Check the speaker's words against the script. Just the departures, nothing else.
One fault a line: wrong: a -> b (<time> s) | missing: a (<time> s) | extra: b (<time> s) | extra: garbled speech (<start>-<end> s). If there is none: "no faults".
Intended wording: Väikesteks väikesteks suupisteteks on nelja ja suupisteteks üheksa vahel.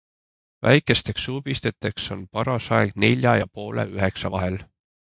missing: väikesteks (1.2 s)
extra: paras aeg (2.3 s)
wrong: suupisteteks -> poole (3.6 s)